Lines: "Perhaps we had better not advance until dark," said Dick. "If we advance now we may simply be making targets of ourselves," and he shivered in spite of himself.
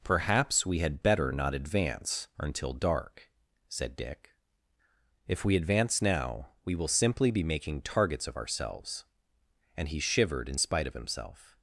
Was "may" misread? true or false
true